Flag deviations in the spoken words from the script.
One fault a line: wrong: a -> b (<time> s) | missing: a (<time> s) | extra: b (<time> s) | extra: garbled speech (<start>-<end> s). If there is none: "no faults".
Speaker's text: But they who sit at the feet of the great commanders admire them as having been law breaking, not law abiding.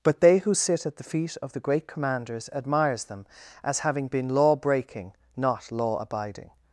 wrong: admire -> admires (2.5 s)